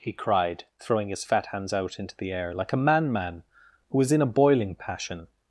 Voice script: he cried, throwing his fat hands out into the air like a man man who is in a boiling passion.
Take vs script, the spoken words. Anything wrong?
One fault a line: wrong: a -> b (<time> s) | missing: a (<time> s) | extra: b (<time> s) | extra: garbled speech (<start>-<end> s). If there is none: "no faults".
no faults